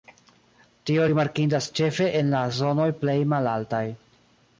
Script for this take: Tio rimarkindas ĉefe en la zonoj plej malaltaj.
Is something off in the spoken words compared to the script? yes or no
no